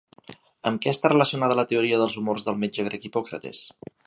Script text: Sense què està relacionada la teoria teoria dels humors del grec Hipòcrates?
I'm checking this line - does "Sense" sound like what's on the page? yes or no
no